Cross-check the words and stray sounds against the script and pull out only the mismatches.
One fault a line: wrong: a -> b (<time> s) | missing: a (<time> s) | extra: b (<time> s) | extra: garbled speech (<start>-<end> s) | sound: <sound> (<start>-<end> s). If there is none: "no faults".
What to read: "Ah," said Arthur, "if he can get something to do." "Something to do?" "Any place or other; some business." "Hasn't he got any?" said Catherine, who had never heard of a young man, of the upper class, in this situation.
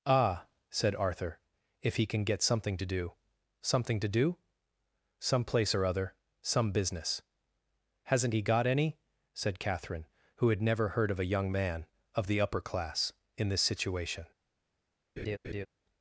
wrong: Any -> Some (5.2 s)
sound: laugh (15.2-15.7 s)